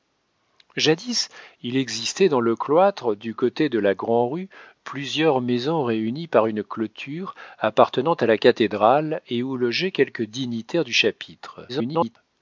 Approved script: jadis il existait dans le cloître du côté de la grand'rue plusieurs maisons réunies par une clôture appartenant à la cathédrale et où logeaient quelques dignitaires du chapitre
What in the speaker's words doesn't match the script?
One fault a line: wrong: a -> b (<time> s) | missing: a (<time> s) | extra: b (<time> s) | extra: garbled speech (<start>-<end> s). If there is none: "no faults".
extra: garbled speech (11.7-12.2 s)